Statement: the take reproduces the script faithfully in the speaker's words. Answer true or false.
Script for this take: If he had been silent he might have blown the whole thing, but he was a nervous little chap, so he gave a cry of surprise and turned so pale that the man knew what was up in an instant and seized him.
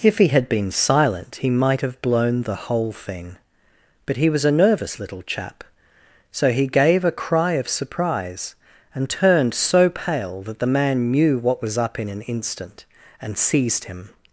true